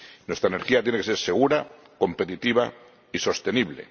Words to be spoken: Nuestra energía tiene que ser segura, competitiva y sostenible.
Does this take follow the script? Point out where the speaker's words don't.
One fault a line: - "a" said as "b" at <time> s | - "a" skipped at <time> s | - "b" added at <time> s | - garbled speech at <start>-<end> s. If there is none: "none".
none